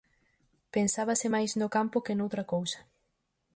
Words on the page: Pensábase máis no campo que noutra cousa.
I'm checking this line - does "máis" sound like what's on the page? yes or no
yes